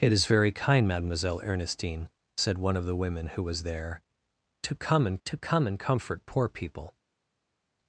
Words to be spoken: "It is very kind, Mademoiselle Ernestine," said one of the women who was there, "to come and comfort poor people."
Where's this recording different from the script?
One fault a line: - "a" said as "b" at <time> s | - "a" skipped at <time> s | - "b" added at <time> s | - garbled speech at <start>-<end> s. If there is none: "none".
- "to come and" added at 5.3 s